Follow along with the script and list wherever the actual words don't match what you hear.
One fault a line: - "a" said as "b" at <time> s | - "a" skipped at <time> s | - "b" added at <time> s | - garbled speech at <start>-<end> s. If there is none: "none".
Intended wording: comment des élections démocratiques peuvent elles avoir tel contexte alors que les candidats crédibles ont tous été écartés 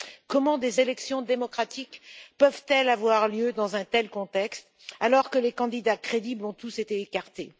- "lieu dans un" added at 3.3 s